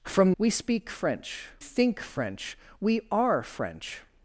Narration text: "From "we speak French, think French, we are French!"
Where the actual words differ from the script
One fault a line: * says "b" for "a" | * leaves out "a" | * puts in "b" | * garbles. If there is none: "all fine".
all fine